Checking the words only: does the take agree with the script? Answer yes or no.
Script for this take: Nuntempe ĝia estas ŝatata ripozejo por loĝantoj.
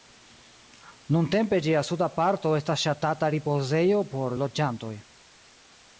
no